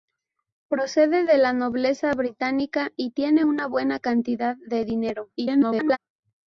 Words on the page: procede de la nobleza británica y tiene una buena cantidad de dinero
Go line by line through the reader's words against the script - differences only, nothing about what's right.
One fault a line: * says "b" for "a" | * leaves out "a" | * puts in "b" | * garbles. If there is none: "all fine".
* garbles